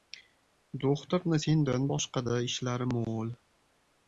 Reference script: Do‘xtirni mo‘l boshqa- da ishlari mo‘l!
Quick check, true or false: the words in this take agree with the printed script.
false